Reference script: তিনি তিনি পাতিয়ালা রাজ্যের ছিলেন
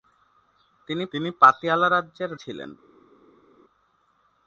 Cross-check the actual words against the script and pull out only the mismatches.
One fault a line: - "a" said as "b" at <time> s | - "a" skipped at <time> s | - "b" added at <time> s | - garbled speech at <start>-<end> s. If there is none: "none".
none